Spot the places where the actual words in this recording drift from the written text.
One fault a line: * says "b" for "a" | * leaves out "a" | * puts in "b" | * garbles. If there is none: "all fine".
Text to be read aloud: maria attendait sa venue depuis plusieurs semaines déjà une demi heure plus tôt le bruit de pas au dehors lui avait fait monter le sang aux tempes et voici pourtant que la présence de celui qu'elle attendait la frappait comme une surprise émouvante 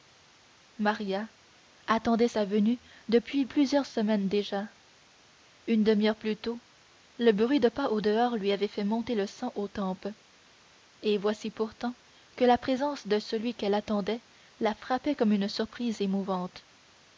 all fine